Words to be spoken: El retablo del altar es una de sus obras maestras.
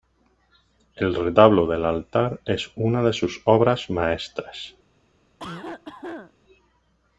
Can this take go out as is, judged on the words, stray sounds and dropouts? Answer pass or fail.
fail